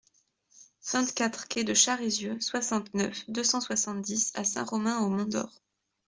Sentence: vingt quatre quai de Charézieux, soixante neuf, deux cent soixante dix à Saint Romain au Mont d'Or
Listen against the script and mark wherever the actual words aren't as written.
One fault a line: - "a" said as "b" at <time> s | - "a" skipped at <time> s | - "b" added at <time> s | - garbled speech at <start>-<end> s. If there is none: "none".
none